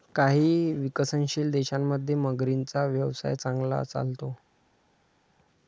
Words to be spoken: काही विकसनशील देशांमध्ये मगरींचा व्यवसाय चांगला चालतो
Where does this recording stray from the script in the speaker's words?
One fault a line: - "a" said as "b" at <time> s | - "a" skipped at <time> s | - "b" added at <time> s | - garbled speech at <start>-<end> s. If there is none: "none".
none